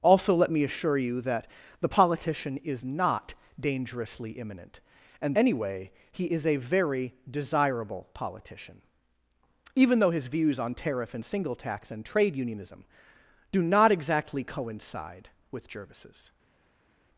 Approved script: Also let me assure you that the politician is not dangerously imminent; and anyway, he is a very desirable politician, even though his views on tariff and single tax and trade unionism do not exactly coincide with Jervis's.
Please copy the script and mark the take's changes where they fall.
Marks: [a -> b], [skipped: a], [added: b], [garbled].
Also let me assure you that the politician is not dangerously imminent; and anyway, he is a very desirable politician, even though his views on tariff and single tax and trade unionism do not exactly coincide with Jervis's.